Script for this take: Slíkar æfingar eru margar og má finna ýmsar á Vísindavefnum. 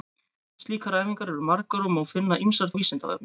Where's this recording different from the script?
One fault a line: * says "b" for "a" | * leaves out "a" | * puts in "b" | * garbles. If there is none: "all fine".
all fine